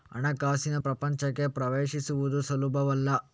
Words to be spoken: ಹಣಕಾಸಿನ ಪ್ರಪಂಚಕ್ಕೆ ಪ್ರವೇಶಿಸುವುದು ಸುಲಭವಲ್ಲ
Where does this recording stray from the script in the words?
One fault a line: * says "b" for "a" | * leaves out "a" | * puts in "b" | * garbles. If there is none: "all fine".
all fine